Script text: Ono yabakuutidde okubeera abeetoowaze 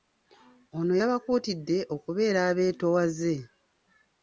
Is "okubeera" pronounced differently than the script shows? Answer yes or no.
no